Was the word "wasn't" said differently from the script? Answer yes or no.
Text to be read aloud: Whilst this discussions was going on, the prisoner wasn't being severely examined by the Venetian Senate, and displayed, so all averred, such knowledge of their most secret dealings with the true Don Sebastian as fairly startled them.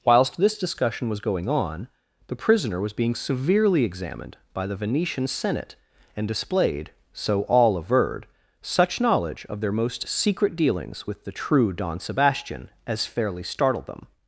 yes